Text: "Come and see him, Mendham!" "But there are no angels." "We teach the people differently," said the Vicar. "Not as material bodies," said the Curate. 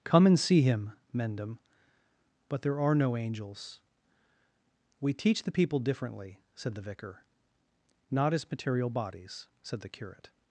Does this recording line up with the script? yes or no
yes